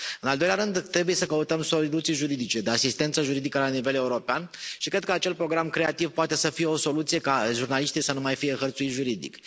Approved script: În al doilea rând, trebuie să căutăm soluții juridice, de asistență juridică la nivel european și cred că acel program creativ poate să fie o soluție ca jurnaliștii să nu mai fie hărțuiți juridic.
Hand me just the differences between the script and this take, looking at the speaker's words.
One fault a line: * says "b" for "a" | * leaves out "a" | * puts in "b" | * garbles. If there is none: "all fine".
all fine